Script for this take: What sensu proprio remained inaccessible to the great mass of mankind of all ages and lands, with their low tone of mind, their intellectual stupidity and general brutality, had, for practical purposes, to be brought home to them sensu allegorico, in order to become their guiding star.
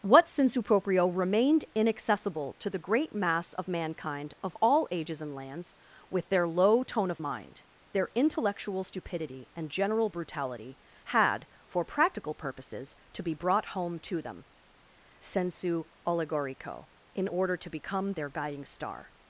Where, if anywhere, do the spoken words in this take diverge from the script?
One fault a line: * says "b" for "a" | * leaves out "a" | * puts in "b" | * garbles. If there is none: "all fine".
all fine